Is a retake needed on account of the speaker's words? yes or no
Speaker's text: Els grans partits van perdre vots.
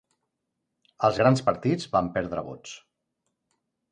no